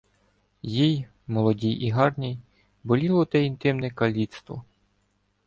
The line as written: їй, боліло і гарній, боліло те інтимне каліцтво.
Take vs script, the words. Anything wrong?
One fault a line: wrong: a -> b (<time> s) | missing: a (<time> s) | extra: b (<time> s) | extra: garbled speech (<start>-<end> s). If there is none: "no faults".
wrong: боліло -> молодій (1.3 s)